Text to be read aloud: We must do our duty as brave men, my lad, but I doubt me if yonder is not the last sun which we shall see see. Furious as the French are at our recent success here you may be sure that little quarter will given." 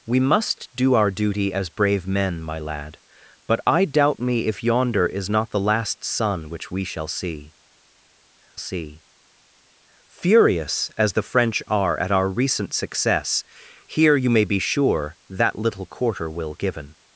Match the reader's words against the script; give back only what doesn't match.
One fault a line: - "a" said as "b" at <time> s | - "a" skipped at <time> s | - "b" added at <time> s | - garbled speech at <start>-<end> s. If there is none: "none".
none